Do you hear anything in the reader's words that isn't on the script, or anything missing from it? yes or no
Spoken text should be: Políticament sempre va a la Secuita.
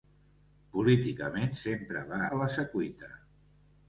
no